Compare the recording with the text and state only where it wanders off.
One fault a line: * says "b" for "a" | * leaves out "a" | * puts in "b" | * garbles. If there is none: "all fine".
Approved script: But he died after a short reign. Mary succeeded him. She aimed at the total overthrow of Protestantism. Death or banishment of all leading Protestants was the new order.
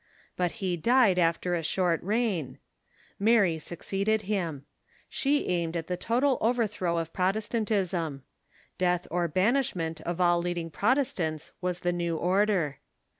all fine